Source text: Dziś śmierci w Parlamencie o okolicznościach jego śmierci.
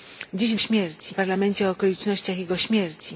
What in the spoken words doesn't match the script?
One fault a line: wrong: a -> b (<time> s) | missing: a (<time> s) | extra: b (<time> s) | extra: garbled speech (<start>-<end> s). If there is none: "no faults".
no faults